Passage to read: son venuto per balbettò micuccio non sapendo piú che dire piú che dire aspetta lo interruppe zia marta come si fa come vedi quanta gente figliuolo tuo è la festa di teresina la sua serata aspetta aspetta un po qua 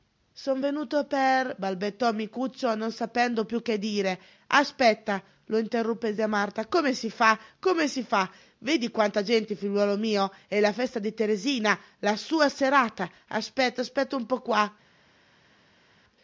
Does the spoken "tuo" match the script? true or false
false